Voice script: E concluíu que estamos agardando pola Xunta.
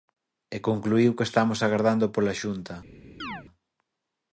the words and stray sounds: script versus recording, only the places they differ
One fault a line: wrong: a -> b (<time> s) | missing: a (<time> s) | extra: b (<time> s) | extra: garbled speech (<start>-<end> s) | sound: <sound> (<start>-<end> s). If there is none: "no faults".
sound: chirp (3.2-3.4 s)